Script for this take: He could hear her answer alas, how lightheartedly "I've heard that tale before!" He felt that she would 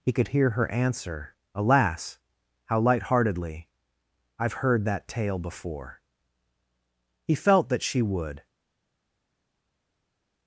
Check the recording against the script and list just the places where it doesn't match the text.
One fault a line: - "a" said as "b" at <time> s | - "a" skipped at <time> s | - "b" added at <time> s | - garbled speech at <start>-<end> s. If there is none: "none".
none